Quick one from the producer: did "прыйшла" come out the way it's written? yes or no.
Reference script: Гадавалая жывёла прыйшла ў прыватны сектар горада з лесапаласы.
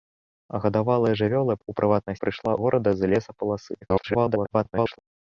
no